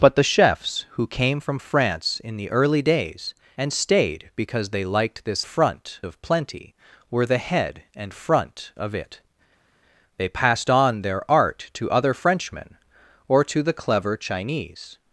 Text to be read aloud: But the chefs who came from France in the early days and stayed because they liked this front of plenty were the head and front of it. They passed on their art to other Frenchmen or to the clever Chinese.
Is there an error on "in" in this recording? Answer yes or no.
no